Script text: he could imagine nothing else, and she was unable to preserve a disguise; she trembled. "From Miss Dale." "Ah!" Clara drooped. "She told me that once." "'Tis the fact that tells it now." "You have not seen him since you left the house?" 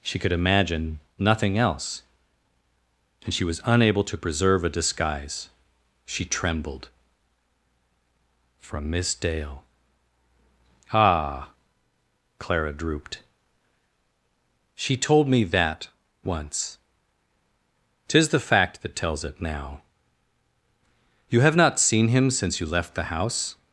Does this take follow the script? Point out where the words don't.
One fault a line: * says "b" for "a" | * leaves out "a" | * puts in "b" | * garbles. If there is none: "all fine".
* says "she" for "he"